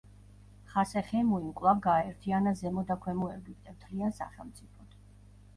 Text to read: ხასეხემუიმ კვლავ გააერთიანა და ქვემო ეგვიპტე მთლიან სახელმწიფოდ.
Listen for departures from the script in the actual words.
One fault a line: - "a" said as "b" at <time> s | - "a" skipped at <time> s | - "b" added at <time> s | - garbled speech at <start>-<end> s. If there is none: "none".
- "ზემო" added at 2.6 s